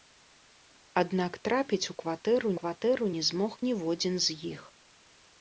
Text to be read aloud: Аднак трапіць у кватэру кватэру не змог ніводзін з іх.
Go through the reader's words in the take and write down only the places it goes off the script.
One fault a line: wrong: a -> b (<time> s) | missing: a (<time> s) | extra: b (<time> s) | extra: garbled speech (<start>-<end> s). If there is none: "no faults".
no faults